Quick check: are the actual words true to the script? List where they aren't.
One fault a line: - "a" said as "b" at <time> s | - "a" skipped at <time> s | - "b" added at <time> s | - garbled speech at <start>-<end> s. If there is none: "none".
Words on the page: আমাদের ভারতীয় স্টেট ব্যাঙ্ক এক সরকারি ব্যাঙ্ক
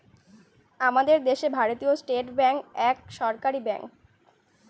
- "দেশে" added at 1.2 s